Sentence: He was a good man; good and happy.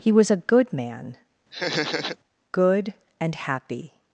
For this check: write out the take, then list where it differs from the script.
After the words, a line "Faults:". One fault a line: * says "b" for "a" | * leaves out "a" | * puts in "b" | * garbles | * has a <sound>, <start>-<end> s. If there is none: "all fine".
He was a good man; good and happy.
Faults:
* has a laugh, 1.5-2.2 s